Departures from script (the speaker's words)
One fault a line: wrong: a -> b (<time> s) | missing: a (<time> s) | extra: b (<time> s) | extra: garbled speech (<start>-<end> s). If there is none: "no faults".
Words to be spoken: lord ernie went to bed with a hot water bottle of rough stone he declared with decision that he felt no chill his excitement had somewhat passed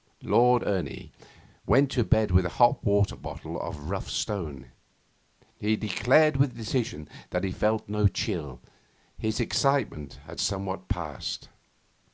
no faults